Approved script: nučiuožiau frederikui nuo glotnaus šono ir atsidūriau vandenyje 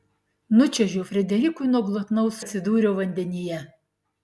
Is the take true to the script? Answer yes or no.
no